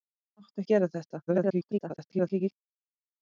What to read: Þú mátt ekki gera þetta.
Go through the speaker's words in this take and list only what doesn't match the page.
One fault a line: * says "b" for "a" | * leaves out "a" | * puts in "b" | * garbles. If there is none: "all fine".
* leaves out "ekki"
* garbles